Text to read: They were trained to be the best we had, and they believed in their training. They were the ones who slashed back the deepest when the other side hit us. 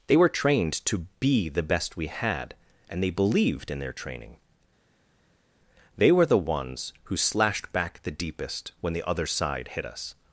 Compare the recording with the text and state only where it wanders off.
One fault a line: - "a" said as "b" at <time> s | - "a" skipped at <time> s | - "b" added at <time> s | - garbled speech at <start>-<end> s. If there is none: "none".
none